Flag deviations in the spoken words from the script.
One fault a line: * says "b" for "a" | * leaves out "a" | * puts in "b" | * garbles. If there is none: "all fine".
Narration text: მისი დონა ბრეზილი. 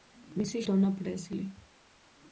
all fine